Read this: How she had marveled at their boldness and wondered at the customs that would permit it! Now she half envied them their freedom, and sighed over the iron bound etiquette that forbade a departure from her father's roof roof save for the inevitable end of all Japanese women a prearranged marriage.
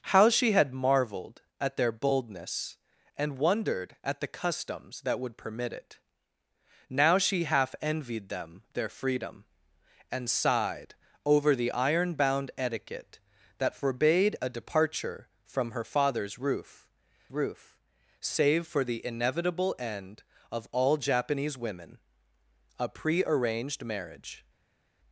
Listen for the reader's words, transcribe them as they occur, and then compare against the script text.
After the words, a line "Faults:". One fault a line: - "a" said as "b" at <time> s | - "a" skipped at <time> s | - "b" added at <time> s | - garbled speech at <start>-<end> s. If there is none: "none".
How she had marveled at their boldness and wondered at the customs that would permit it! Now she half envied them their freedom, and sighed over the iron bound etiquette that forbade a departure from her father's roof roof save for the inevitable end of all Japanese women a prearranged marriage.
Faults:
none